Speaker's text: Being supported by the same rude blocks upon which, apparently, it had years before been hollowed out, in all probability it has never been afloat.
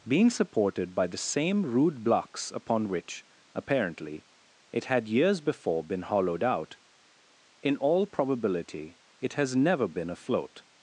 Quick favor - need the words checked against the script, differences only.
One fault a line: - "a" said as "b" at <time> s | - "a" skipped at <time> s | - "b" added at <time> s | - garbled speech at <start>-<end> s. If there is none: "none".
none